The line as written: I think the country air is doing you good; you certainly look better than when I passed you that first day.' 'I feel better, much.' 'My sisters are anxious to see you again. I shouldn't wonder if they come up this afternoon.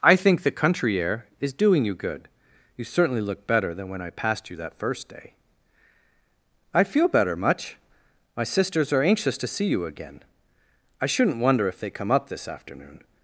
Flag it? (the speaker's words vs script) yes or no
no